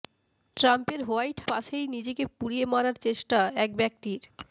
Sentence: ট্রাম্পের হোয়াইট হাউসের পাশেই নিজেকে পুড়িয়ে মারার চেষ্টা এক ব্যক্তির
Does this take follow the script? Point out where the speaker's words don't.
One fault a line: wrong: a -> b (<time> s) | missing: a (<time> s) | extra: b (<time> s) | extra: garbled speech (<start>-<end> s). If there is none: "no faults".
missing: হাউসের (1.4 s)